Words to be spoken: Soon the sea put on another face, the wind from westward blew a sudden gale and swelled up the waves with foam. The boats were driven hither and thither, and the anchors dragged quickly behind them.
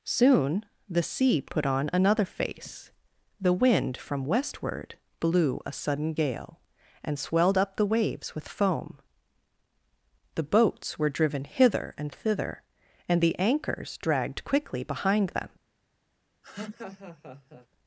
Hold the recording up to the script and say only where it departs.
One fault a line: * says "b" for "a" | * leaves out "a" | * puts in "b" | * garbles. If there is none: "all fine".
all fine